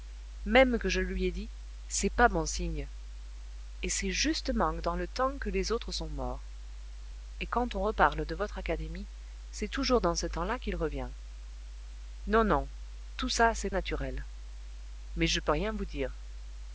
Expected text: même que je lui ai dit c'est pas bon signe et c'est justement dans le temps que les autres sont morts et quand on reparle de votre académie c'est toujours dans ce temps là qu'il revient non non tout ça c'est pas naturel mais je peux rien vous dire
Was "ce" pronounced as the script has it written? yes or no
yes